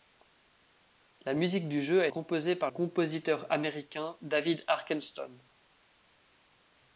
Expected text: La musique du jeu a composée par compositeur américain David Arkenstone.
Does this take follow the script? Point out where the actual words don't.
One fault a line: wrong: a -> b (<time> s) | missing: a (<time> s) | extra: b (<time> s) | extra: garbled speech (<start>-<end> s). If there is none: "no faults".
no faults